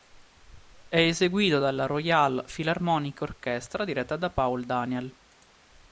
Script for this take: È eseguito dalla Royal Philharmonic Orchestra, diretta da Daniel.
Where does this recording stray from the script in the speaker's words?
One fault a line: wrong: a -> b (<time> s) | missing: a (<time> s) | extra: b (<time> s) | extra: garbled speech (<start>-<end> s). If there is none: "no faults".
extra: Paul (4.3 s)